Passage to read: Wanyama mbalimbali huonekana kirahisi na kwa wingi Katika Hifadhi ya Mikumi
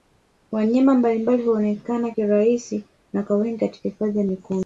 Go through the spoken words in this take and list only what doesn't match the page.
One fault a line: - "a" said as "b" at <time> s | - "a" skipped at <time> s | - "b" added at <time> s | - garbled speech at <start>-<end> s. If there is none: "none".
none